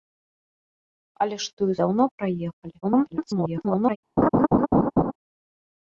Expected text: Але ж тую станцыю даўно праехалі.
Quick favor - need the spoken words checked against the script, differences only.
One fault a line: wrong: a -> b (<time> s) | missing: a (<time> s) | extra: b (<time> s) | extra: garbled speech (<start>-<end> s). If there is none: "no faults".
missing: станцыю (1.7 s)
extra: garbled speech (2.8-4.0 s)